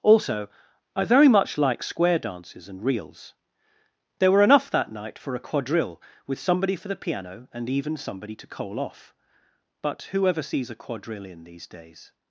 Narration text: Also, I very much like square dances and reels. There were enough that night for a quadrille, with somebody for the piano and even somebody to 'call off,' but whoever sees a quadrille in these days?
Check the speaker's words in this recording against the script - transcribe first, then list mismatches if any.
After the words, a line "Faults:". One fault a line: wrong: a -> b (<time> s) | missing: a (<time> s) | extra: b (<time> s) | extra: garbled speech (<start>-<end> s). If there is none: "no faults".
Also, I very much like square dances and reels. There were enough that night for a quadrille, with somebody for the piano and even somebody to 'coal off,' but whoever sees a quadrille in these days?
Faults:
wrong: call -> coal (8.5 s)